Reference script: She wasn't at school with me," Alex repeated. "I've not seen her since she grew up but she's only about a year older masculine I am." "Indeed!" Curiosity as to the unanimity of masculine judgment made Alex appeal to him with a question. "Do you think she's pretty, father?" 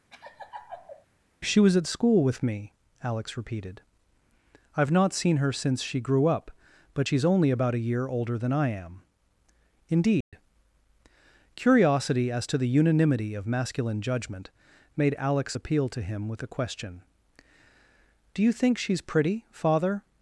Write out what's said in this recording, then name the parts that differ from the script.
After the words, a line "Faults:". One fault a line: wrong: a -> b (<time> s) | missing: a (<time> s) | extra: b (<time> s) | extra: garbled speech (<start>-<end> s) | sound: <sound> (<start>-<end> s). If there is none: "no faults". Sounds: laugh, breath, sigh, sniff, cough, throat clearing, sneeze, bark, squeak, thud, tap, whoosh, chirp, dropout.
She was at school with me," Alex repeated. "I've not seen her since she grew up but she's only about a year older than I am." "Indeed!" Curiosity as to the unanimity of masculine judgment made Alex appeal to him with a question. "Do you think she's pretty, father?"
Faults:
sound: laugh (0.1-1.1 s)
wrong: wasn't -> was (1.6 s)
wrong: masculine -> than (8.4 s)
sound: dropout (10.2-10.3 s)